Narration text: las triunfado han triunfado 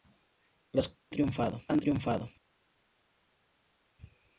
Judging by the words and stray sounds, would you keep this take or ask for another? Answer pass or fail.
pass